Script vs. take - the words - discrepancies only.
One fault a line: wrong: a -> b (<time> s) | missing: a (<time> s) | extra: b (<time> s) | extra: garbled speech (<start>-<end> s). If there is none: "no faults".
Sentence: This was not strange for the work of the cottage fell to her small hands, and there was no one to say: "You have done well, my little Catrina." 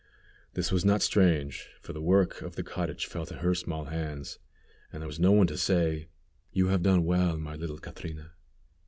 no faults